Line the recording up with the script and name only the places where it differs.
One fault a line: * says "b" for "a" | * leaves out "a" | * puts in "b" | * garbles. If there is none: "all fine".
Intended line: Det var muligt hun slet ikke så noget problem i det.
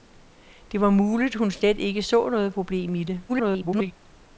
* garbles